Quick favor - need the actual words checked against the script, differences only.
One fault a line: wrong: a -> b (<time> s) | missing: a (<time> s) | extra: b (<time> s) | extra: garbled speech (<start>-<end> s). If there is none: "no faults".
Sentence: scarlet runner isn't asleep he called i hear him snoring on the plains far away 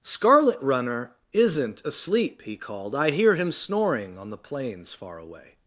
no faults